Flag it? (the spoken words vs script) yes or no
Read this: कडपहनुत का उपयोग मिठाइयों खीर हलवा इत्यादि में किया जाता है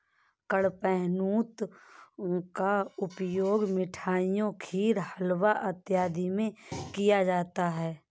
no